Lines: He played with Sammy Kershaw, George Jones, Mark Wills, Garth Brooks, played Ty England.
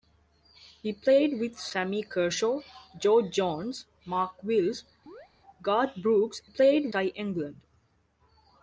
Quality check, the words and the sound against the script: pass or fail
fail